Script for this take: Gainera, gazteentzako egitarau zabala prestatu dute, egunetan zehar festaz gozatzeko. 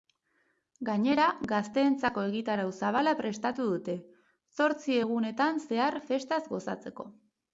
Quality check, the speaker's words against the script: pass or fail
fail